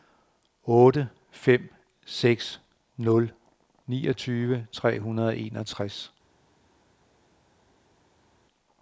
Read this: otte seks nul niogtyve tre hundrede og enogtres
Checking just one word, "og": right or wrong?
right